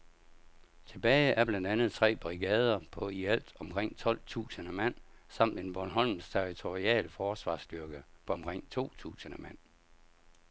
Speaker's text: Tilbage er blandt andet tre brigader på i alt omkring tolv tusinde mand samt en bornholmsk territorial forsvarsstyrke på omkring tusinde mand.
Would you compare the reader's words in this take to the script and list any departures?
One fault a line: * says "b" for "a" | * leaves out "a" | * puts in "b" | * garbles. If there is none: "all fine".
* puts in "to"